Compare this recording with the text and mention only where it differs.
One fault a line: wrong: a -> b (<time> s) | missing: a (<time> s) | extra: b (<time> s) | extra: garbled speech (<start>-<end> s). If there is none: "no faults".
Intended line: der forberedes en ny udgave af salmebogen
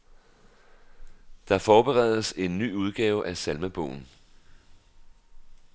no faults